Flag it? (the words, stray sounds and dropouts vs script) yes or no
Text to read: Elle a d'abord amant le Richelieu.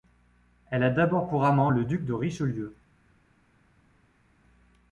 yes